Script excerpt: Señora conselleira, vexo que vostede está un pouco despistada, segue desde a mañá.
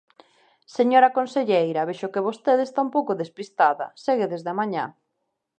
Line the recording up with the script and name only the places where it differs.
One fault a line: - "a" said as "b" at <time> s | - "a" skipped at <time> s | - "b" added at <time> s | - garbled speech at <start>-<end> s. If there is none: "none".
none